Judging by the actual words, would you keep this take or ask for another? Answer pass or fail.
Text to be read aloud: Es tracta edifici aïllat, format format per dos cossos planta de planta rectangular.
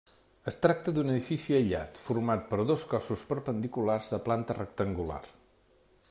fail